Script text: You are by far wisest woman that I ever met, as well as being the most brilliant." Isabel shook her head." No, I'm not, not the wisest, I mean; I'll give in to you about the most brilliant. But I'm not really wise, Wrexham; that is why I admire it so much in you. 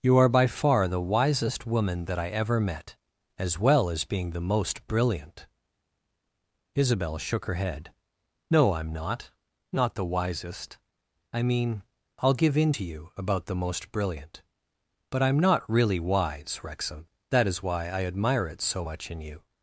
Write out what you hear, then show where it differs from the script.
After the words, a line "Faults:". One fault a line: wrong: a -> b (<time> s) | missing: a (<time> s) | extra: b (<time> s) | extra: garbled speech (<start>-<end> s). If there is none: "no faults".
You are by far the wisest woman that I ever met, as well as being the most brilliant." Isabel shook her head." No, I'm not, not the wisest, I mean; I'll give in to you about the most brilliant. But I'm not really wise, Wrexham; that is why I admire it so much in you.
Faults:
extra: the (0.9 s)